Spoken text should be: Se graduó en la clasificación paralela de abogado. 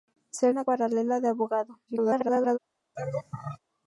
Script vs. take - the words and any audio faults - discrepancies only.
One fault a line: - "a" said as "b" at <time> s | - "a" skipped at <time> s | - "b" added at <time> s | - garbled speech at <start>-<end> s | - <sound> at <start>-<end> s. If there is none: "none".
- "graduó" skipped at 0.5 s
- "clasificación" skipped at 0.6 s
- garbled speech at 1.9-2.6 s
- laugh at 3.0-3.6 s